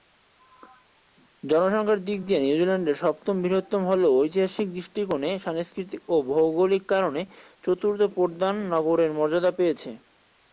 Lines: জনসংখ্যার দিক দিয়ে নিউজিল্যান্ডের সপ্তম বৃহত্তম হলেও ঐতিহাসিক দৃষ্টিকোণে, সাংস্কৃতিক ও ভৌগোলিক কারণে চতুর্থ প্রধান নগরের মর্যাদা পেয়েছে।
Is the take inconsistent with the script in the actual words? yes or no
no